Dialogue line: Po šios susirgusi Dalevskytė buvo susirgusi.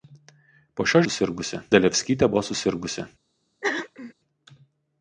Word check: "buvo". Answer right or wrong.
right